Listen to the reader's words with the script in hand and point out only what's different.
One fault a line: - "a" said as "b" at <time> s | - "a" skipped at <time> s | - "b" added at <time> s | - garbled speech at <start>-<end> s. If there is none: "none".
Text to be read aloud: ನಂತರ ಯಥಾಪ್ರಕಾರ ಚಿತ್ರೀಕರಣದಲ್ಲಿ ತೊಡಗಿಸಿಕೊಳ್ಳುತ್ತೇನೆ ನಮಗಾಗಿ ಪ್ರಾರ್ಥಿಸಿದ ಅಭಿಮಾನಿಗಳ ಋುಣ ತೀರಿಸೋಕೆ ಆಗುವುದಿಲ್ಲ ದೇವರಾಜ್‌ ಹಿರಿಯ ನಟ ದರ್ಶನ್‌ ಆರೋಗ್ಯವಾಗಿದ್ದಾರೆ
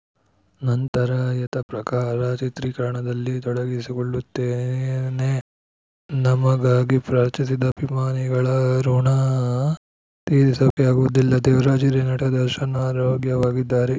none